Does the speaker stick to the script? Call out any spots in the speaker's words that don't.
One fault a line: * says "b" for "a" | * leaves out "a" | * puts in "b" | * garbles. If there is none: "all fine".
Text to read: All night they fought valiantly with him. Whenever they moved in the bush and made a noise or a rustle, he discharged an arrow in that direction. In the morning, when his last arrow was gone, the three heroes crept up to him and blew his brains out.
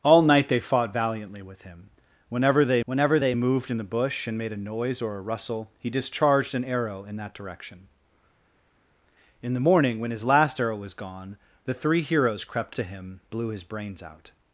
* puts in "whenever they"
* leaves out "up"
* leaves out "and"